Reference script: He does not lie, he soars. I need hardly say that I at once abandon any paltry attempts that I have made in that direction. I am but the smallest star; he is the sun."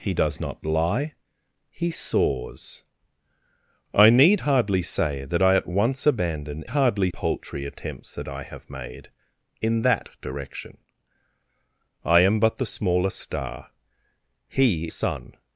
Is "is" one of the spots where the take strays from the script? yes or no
yes